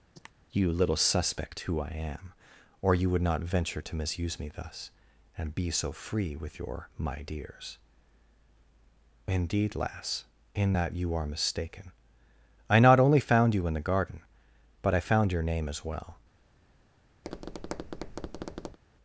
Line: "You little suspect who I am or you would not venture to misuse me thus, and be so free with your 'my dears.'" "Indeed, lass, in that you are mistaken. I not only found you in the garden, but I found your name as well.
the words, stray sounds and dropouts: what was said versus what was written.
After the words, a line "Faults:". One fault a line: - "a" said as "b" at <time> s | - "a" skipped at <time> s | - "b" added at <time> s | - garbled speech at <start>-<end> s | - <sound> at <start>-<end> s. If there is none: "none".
"You little suspect who I am or you would not venture to misuse me thus, and be so free with your 'my dears.'" "Indeed, lass, in that you are mistaken. I not only found you in the garden, but I found your name as well.
Faults:
- cough at 0.1-0.3 s
- tap at 17.2-18.8 s